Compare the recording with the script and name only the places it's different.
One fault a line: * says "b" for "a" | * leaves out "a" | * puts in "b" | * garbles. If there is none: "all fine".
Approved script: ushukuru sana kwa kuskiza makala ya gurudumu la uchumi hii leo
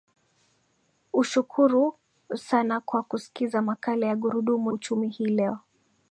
* leaves out "la"